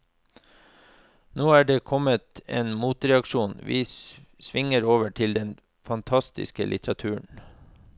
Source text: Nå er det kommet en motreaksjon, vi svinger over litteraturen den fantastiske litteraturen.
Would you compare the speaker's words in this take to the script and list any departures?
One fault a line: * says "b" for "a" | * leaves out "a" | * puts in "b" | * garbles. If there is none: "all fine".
* says "til" for "litteraturen"